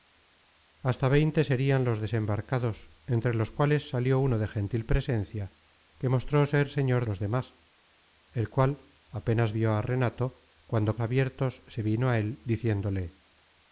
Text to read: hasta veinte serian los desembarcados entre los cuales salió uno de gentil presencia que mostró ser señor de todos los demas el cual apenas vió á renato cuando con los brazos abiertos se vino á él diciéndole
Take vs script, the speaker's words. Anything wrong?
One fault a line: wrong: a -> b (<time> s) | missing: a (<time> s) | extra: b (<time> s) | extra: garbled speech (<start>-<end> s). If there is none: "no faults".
missing: de todos (7.0 s)
missing: con los brazos (11.0 s)